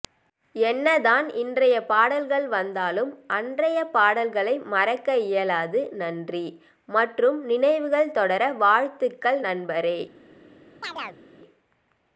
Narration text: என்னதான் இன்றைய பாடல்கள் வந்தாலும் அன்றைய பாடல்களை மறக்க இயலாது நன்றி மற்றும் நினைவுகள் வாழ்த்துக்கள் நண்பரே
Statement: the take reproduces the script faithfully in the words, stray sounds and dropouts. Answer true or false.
false